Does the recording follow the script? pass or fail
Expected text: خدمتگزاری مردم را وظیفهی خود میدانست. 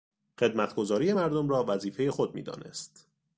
pass